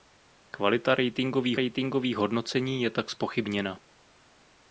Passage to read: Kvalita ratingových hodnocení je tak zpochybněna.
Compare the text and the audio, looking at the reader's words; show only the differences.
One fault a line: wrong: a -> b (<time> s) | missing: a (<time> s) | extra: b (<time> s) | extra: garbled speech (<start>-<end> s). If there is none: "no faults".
extra: ratingových (1.5 s)